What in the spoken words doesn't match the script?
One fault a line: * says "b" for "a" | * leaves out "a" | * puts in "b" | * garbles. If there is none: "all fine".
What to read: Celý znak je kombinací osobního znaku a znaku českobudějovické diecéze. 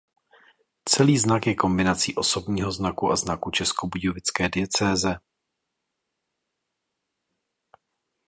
all fine